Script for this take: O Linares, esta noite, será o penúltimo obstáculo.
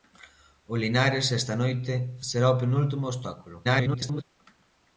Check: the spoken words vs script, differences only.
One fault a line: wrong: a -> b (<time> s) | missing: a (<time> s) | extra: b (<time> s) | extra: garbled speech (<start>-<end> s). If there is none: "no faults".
extra: garbled speech (3.6-4.2 s)